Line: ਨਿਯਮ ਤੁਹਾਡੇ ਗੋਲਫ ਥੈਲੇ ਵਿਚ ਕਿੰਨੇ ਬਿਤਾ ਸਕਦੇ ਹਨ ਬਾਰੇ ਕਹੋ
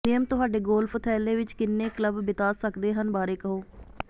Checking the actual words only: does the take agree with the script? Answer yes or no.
no